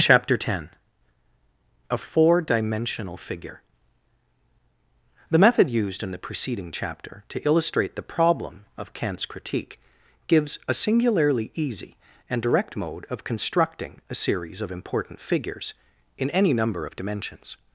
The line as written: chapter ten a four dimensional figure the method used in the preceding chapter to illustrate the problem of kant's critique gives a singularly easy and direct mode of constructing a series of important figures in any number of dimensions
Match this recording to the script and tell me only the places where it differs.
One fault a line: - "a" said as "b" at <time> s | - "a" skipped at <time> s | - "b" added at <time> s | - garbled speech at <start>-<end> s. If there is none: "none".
none